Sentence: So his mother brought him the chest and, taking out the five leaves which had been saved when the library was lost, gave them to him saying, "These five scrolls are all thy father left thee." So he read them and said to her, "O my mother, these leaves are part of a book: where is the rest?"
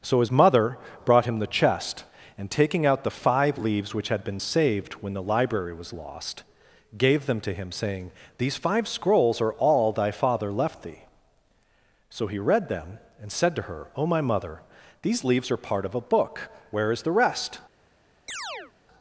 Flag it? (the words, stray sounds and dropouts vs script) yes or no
yes